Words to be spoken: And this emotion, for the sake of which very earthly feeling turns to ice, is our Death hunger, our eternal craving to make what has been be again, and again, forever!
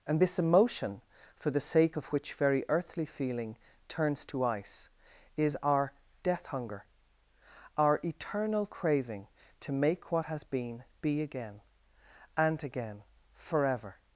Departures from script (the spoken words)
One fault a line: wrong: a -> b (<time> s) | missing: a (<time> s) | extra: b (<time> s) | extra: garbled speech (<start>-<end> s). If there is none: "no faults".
no faults